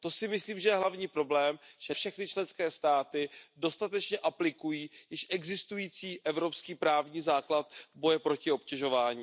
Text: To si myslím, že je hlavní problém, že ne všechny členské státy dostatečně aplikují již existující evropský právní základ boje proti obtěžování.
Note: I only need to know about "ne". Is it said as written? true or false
false